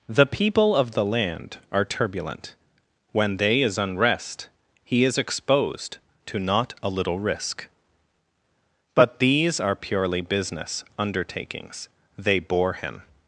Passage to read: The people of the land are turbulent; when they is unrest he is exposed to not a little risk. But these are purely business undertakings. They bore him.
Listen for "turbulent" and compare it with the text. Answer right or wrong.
right